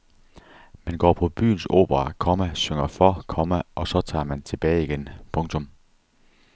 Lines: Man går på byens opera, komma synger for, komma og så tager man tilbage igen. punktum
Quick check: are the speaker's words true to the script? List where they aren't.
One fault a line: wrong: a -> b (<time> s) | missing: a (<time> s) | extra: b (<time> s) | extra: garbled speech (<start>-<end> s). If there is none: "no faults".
no faults